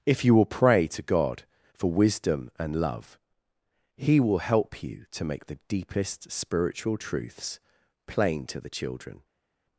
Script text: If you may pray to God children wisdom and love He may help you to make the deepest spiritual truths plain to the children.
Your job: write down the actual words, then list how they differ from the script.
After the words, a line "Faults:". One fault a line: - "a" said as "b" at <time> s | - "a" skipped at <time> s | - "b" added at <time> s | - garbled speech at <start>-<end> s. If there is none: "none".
If you will pray to God for wisdom and love He will help you to make the deepest spiritual truths plain to the children.
Faults:
- "may" said as "will" at 0.3 s
- "children" said as "for" at 1.7 s
- "may" said as "will" at 4.2 s